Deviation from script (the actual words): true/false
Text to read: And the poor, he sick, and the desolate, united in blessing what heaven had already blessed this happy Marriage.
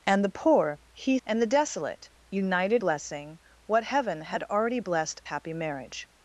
true